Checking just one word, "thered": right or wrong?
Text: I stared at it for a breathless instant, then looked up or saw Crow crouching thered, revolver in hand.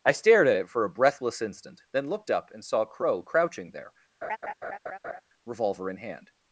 wrong